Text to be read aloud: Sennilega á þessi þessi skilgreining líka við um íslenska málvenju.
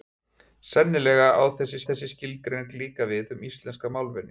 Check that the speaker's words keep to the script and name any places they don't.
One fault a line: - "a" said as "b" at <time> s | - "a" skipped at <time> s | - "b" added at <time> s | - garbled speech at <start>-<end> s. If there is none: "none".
none